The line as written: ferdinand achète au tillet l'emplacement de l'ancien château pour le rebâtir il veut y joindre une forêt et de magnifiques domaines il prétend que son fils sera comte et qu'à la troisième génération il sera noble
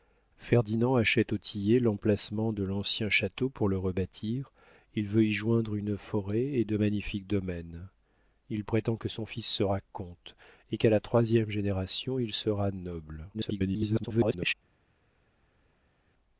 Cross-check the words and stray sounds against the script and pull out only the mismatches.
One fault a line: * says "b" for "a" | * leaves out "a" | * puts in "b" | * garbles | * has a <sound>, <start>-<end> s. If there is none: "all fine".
* garbles